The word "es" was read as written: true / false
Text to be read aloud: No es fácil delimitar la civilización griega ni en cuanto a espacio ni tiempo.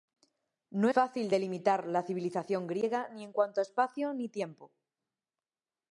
false